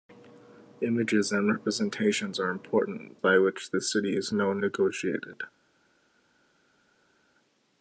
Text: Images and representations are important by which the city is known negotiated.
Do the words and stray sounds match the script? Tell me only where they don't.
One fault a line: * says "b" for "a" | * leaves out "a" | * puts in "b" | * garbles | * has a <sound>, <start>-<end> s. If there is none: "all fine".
all fine